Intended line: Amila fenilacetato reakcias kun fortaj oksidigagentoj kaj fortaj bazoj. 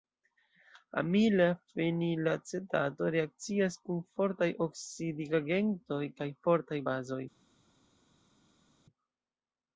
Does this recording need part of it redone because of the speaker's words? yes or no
no